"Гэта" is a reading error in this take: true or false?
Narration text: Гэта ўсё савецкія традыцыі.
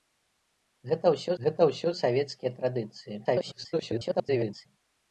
false